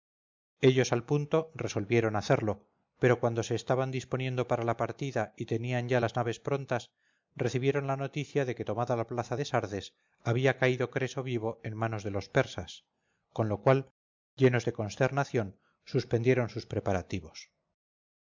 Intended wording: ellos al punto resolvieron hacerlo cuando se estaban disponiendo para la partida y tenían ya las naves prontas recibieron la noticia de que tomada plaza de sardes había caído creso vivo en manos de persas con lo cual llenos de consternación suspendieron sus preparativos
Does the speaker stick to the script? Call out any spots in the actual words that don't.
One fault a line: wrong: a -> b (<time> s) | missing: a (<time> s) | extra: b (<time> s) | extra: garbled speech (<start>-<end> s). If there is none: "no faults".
extra: pero (3.0 s)
extra: la (9.0 s)
extra: los (12.1 s)